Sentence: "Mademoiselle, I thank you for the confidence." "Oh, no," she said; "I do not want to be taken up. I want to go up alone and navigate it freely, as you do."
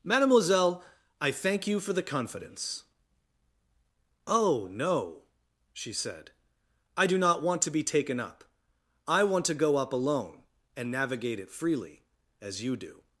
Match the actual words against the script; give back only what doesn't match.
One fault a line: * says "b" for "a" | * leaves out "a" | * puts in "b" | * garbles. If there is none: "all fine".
all fine